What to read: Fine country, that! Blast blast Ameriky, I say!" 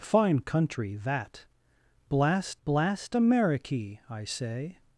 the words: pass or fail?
pass